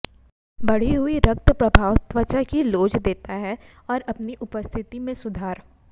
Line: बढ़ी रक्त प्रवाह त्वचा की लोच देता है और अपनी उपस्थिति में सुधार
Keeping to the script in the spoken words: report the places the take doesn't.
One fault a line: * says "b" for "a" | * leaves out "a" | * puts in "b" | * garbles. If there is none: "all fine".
* puts in "हुई"